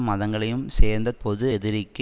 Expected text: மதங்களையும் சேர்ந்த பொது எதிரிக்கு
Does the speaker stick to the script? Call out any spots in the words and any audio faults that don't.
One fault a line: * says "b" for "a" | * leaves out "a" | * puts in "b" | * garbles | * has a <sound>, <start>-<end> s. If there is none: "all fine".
all fine